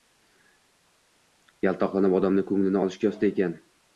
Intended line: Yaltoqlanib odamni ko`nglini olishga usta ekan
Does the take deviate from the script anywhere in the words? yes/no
no